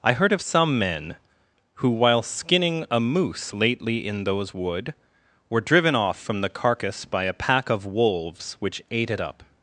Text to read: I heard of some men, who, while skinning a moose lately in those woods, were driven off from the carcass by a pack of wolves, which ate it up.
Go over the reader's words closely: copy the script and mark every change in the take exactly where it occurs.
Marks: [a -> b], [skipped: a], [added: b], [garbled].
I heard of some men, who, while skinning a moose lately in those [woods, -> wood] were driven off from the carcass by a pack of wolves, which ate it up.